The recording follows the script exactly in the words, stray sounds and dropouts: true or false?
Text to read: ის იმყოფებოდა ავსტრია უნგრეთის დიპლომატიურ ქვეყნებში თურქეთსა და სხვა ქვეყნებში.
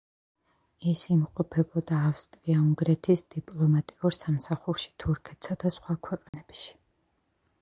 false